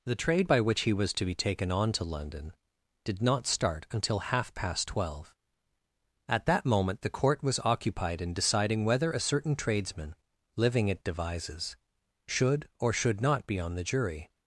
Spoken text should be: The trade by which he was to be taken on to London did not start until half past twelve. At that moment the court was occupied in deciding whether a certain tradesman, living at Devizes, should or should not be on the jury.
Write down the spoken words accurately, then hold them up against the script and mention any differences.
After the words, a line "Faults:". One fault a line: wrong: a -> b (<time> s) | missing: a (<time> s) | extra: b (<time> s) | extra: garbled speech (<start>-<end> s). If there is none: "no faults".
The trade by which he was to be taken on to London did not start until half past twelve. At that moment the court was occupied in deciding whether a certain tradesman, living at Devizes, should or should not be on the jury.
Faults:
no faults